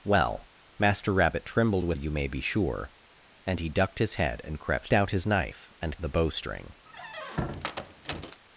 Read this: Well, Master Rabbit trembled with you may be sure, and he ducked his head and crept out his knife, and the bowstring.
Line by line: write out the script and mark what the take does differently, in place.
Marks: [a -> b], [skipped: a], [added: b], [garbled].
Well, Master Rabbit trembled with you may be sure, and he ducked his head and crept out his knife, and the bowstring.